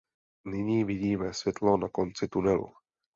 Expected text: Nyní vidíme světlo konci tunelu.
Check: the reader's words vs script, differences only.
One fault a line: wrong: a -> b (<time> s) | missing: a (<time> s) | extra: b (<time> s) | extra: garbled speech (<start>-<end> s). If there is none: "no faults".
extra: na (1.8 s)